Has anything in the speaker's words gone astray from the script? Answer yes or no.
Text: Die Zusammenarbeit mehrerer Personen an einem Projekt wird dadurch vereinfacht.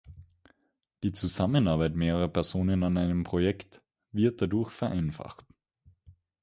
no